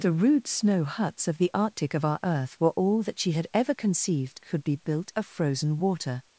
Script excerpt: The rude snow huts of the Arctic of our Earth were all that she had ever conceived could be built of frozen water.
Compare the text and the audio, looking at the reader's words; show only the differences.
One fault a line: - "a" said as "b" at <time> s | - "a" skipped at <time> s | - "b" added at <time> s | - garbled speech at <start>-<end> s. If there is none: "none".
none